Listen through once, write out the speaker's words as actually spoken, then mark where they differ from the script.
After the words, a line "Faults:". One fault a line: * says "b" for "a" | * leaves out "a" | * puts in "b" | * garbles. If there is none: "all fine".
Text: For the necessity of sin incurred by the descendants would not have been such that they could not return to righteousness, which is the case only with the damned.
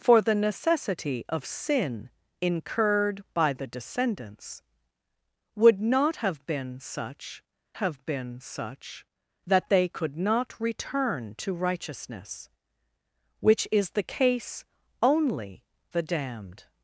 For the necessity of sin incurred by the descendants would not have been such have been such that they could not return to righteousness, which is the case only the damned.
Faults:
* puts in "have been such"
* leaves out "with"